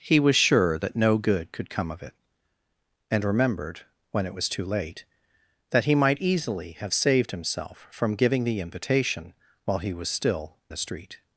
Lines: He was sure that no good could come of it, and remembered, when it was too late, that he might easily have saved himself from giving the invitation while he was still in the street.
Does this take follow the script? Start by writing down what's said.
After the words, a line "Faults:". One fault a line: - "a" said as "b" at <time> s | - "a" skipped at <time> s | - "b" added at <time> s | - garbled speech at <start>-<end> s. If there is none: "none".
He was sure that no good could come of it, and remembered, when it was too late, that he might easily have saved himself from giving the invitation while he was still the street.
Faults:
- "in" skipped at 10.6 s